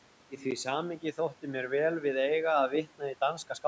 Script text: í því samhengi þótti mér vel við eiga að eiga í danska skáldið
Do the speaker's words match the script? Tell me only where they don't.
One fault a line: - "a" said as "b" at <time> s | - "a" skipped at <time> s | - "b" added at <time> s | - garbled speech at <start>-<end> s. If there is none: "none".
- "eiga" said as "vitna" at 2.8 s